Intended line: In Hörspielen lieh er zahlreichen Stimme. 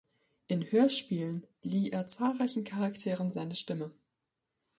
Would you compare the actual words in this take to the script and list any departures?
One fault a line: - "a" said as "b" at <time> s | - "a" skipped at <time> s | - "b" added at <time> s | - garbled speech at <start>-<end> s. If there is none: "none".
- "Charakteren seine" added at 2.6 s